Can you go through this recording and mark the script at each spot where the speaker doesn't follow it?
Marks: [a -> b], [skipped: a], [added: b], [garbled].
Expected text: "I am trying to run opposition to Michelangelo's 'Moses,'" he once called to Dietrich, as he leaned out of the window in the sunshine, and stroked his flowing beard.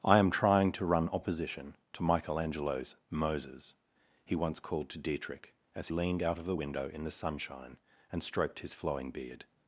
"I am trying to run opposition to Michelangelo's 'Moses,'" he once called to Dietrich, as [skipped: he] leaned out of the window in the sunshine, and stroked his flowing beard.